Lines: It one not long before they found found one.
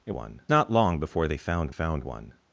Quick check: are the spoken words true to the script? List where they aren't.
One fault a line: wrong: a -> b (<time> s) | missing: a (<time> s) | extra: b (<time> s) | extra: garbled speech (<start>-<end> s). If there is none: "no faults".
no faults